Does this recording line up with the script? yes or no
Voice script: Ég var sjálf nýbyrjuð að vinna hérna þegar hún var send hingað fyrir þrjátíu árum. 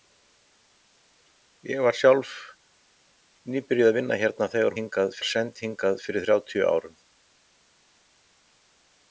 no